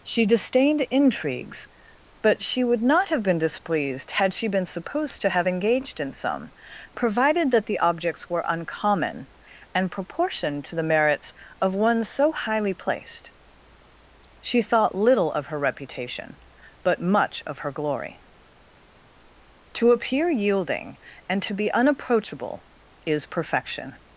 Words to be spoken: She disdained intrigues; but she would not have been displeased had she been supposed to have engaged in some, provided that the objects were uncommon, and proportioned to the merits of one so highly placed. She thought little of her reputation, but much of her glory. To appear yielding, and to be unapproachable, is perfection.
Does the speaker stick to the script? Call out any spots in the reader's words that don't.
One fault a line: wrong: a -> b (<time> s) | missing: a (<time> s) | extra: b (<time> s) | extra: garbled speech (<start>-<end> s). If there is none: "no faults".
no faults